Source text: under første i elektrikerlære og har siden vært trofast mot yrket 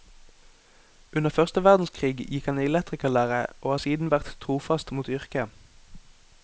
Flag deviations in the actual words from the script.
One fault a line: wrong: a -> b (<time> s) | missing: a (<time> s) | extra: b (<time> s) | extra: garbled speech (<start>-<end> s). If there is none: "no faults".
extra: verdenskrig gikk han (1.6 s)